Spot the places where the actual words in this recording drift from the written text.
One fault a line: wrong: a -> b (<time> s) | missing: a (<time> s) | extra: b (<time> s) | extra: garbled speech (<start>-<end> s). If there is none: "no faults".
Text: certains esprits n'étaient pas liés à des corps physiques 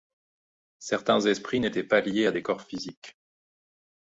no faults